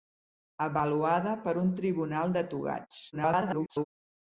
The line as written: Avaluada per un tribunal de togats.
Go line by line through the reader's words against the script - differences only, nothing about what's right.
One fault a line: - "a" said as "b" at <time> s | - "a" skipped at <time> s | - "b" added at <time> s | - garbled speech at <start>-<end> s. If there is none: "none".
- garbled speech at 3.1-3.8 s